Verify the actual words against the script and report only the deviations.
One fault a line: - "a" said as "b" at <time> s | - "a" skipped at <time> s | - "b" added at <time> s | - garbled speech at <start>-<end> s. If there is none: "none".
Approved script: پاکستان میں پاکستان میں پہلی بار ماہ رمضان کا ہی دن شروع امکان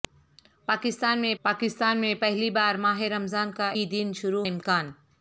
none